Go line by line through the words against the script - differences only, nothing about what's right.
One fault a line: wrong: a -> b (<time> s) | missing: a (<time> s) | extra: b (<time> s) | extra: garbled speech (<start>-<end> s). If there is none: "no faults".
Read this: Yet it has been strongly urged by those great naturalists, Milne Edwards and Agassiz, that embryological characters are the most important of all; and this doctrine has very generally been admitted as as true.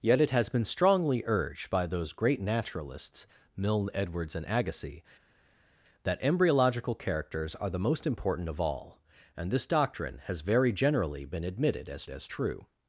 no faults